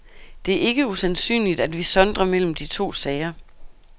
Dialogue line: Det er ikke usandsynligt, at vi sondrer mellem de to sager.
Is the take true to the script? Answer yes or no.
yes